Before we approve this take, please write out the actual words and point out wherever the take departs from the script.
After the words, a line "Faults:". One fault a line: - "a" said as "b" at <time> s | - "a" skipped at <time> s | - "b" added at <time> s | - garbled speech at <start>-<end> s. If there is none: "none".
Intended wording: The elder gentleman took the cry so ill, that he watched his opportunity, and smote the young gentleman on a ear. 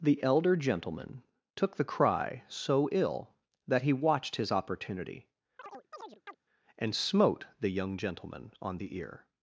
The elder gentleman took the cry so ill, that he watched his opportunity, and smote the young gentleman on the ear.
Faults:
- "a" said as "the" at 8.8 s